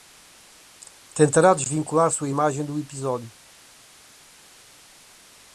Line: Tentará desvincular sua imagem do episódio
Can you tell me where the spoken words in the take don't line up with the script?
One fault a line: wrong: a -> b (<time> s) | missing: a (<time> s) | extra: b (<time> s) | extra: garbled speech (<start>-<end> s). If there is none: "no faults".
no faults